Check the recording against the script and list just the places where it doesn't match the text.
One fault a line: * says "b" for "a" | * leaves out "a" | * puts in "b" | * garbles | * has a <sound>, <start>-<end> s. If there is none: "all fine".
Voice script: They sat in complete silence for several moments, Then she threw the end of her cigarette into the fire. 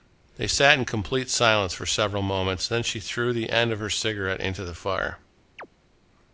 * has a chirp, 5.6-5.7 s